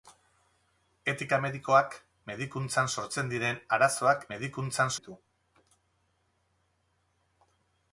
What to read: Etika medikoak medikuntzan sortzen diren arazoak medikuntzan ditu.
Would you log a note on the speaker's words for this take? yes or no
no